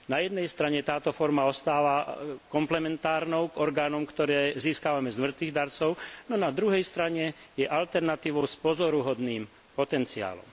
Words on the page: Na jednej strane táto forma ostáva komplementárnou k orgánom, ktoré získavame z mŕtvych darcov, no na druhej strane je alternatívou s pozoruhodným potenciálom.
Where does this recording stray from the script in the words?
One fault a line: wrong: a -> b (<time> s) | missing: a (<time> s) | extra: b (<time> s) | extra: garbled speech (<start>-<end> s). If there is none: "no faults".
no faults